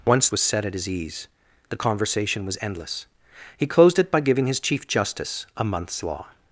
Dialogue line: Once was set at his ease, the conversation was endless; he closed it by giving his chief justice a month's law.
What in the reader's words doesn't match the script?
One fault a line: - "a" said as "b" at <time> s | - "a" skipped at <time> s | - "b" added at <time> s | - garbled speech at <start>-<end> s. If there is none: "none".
none